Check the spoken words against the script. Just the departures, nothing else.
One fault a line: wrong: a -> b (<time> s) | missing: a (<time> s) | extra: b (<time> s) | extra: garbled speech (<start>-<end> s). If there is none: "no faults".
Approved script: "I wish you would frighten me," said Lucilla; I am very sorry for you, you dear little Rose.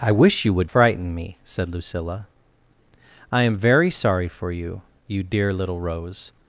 no faults